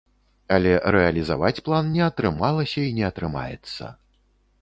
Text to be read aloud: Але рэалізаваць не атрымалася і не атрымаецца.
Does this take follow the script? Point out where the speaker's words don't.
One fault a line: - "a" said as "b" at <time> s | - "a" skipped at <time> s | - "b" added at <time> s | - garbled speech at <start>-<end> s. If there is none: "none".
- "план" added at 1.6 s